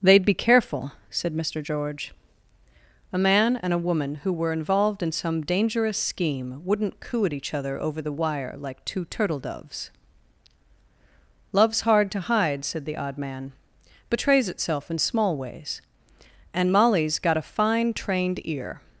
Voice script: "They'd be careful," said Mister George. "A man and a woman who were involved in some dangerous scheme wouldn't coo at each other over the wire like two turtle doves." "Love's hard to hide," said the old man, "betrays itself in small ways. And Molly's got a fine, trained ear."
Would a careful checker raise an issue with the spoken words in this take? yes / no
yes